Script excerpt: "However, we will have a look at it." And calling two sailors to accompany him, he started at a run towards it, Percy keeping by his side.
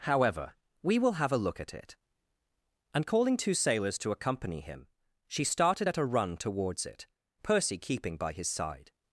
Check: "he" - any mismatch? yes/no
yes